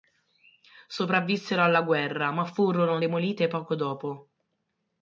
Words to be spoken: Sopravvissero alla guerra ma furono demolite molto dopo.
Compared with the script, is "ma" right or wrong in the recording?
right